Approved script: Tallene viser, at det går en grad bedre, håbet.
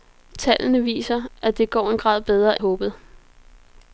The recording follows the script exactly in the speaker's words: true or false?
true